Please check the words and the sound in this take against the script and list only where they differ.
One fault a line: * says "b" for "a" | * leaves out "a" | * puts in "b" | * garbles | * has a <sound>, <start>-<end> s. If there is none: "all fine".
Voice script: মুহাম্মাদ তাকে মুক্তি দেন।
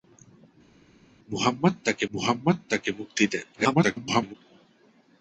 * puts in "মুহাম্মাদ তাকে"
* garbles